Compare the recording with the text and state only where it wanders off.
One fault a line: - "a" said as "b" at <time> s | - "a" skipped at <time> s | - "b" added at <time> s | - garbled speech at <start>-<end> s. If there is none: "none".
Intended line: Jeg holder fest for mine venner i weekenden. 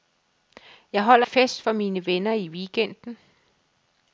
none